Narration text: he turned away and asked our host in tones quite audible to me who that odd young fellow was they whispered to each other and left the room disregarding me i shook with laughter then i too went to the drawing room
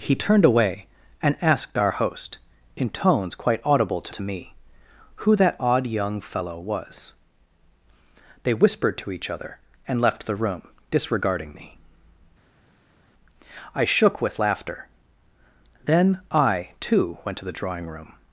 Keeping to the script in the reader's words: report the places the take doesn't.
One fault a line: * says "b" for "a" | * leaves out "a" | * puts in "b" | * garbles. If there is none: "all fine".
* puts in "to"